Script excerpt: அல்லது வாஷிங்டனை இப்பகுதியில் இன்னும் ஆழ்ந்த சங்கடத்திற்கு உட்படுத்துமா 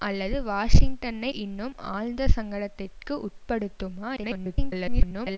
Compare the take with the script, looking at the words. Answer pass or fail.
fail